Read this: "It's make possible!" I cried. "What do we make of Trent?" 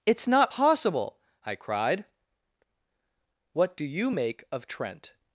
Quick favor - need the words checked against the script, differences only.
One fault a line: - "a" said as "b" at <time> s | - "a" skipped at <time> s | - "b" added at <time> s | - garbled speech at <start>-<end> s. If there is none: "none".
- "make" said as "not" at 0.3 s
- "we" said as "you" at 3.8 s